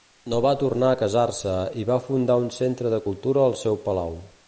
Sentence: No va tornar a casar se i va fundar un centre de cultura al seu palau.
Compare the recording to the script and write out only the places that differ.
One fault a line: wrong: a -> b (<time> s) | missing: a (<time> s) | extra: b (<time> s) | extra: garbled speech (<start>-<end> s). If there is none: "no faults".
no faults